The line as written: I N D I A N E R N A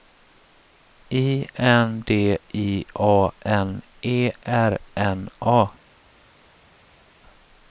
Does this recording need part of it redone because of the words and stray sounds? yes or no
no